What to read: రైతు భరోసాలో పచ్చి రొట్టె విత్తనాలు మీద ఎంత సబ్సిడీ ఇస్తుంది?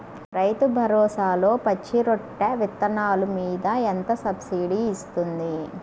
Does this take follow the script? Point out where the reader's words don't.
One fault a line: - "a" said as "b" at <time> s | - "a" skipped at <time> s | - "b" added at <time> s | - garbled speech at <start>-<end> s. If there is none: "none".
none